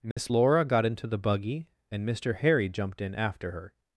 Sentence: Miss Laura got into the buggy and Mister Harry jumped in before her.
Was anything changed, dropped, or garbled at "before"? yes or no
yes